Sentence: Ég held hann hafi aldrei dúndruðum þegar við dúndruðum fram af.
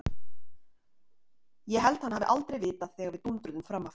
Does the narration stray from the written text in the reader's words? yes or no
yes